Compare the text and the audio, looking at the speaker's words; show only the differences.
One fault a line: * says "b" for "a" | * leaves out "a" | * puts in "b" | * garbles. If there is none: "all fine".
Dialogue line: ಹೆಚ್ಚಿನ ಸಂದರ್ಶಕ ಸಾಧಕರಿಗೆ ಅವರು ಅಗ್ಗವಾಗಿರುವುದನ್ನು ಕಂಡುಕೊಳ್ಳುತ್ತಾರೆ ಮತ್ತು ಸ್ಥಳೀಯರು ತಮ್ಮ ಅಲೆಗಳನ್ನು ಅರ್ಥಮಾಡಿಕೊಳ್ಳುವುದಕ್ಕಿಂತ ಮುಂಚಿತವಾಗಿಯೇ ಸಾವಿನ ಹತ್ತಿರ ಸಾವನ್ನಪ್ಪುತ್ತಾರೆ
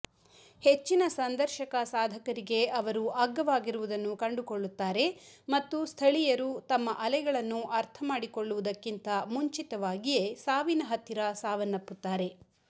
all fine